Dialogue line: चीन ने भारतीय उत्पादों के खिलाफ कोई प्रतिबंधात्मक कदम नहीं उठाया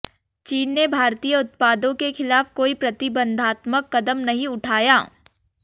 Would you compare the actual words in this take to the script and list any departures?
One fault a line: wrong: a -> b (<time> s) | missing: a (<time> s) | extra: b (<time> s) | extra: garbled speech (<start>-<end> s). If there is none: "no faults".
no faults